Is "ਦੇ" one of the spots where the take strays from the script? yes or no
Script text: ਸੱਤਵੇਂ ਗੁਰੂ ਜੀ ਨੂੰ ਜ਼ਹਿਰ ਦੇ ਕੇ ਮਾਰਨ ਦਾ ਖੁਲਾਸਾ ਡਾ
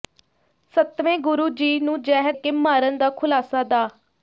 yes